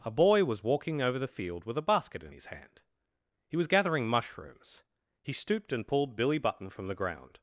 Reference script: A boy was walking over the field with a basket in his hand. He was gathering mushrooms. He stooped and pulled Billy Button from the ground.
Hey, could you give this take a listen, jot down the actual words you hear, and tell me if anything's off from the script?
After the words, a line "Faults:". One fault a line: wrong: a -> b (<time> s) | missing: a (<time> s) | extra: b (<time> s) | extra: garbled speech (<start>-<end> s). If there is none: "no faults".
A boy was walking over the field with a basket in his hand. He was gathering mushrooms. He stooped and pulled Billy Button from the ground.
Faults:
no faults